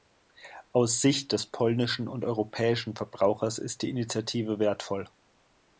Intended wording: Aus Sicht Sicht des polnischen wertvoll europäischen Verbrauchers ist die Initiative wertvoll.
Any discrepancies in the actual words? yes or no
yes